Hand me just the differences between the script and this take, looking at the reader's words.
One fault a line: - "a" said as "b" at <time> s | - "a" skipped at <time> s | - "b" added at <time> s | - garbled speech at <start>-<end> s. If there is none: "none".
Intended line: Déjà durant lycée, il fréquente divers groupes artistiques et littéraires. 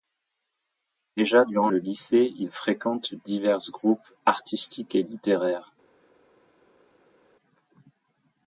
- "le" added at 1.7 s